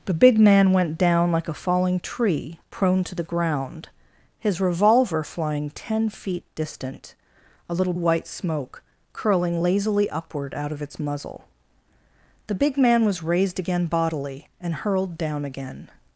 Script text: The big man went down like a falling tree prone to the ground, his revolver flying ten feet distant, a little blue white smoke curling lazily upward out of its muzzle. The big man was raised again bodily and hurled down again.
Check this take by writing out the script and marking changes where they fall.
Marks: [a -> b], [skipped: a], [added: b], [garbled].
The big man went down like a falling tree prone to the ground, his revolver flying ten feet distant, a little [skipped: blue] white smoke curling lazily upward out of its muzzle. The big man was raised again bodily and hurled down again.